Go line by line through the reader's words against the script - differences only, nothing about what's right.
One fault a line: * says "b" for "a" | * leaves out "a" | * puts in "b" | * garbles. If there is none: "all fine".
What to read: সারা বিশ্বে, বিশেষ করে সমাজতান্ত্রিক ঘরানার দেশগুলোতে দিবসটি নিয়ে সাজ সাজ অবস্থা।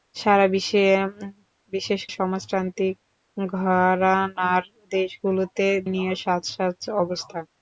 * leaves out "করে"
* leaves out "দিবসটি"